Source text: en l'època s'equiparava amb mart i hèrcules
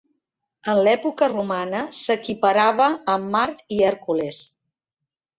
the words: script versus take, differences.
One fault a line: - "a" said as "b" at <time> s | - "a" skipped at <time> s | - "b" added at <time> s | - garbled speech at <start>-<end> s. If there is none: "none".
- "romana" added at 1.3 s